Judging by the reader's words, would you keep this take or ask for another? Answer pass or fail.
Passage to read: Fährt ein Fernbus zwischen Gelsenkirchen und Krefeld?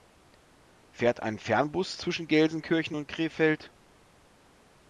pass